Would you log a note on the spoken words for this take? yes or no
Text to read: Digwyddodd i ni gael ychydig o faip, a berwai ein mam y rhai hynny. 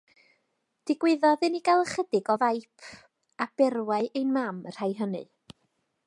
no